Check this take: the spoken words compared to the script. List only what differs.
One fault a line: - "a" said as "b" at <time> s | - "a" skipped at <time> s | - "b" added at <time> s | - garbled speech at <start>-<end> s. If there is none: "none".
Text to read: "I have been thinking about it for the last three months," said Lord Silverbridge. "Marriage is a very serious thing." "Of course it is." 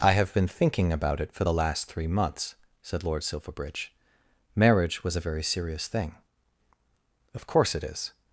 - "is" said as "was" at 5.0 s